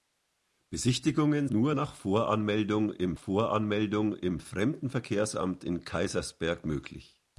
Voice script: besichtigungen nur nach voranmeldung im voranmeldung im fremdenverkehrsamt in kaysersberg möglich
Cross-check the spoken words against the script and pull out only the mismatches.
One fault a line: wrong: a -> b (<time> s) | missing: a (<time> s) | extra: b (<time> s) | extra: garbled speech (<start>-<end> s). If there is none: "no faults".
no faults